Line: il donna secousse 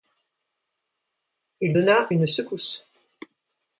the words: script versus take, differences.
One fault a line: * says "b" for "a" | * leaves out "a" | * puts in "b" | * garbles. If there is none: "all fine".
* puts in "une"